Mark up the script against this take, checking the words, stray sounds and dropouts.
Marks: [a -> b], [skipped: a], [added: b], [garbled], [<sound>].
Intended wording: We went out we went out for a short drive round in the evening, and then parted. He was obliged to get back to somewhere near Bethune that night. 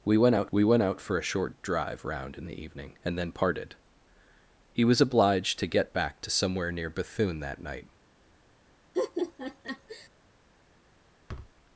We went out we went out for a short drive round in the evening, and then parted. He was obliged to get back to somewhere near Bethune that night. [laugh] [thud]